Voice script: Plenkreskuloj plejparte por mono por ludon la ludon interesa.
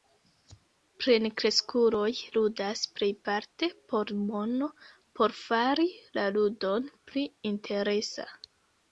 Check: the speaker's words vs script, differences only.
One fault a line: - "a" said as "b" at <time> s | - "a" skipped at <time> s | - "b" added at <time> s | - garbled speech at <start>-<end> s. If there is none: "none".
- "ludas" added at 2.4 s
- "ludon" said as "fari" at 5.4 s
- "pli" added at 7.1 s